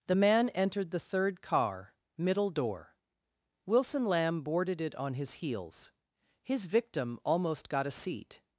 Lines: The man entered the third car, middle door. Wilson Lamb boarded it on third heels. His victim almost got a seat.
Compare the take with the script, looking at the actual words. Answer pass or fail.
fail